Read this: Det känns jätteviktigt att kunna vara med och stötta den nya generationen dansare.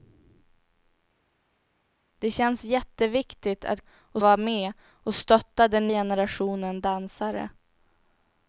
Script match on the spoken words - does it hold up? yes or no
no